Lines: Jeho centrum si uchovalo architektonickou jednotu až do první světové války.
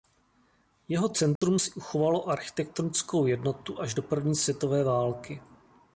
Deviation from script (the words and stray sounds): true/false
true